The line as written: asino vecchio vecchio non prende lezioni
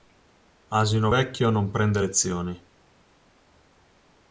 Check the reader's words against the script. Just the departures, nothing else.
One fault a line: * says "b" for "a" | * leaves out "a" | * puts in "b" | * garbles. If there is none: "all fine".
* leaves out "vecchio"